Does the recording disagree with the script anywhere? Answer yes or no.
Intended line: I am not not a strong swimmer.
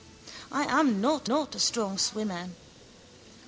no